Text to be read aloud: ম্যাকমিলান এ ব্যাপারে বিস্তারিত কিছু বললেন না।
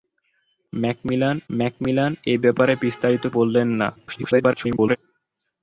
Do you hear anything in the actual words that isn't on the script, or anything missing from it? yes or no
yes